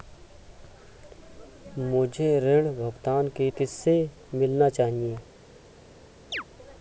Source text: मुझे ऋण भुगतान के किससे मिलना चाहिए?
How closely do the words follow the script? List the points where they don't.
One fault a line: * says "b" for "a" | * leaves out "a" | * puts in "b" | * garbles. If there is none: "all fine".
all fine